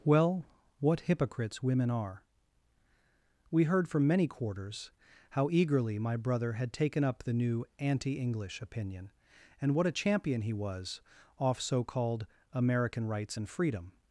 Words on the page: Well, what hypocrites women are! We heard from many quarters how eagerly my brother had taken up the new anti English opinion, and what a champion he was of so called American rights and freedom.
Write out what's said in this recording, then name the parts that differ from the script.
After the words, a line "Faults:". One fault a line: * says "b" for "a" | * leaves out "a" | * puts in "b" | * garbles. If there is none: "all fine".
Well, what hypocrites women are! We heard from many quarters how eagerly my brother had taken up the new anti English opinion, and what a champion he was off so called American rights and freedom.
Faults:
* says "off" for "of"